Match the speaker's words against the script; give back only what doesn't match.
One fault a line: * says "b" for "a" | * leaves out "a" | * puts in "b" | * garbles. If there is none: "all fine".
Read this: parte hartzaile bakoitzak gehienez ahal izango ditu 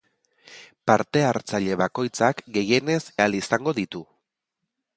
all fine